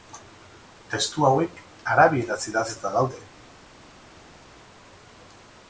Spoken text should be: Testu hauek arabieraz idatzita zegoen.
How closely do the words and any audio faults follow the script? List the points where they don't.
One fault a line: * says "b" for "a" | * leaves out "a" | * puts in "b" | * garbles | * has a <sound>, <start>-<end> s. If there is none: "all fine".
* says "daude" for "zegoen"